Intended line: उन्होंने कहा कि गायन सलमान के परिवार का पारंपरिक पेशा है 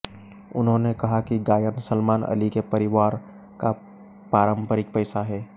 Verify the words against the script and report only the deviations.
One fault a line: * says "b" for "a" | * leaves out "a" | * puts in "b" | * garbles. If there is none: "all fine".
* puts in "अली"